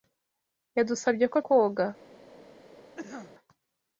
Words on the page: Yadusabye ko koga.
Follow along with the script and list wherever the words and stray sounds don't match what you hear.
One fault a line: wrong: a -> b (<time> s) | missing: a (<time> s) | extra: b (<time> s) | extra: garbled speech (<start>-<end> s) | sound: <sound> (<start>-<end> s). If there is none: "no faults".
sound: cough (3.0-3.3 s)